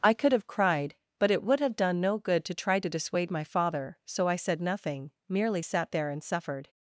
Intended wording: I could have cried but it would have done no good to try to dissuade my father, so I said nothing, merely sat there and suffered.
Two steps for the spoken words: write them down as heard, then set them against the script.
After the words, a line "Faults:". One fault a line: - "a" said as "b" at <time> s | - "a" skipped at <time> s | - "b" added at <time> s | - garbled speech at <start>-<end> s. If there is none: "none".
I could have cried but it would have done no good to try to dissuade my father, so I said nothing, merely sat there and suffered.
Faults:
none